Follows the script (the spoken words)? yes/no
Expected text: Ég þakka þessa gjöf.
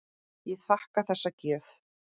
yes